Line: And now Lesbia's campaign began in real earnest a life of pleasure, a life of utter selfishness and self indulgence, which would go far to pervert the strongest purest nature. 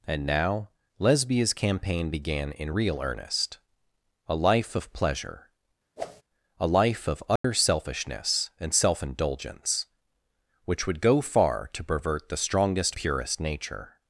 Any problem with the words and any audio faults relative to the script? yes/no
yes